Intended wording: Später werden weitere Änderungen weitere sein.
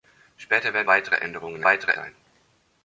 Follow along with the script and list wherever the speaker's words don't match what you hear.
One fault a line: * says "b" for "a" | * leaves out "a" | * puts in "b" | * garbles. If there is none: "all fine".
all fine